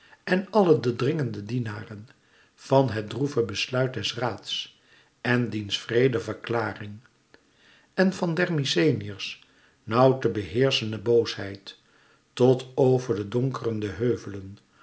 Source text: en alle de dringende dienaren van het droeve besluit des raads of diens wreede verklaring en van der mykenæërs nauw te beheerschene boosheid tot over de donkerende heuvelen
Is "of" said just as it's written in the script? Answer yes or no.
no